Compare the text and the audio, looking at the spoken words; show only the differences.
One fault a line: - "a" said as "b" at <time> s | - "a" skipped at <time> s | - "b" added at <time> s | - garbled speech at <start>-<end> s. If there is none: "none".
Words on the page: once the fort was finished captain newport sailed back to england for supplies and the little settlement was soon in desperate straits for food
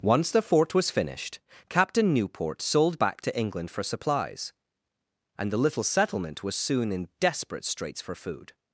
- "sailed" said as "sold" at 2.6 s